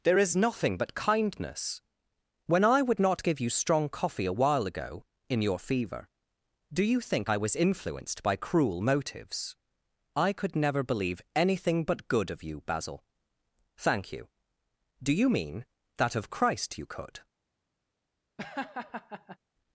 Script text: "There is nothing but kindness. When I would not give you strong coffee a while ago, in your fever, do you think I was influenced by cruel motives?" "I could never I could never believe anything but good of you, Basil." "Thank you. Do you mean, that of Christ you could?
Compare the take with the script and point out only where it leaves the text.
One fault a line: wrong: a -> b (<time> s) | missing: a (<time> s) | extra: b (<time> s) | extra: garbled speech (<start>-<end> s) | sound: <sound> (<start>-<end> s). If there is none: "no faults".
missing: I could never (10.8 s)
sound: laugh (18.4-19.4 s)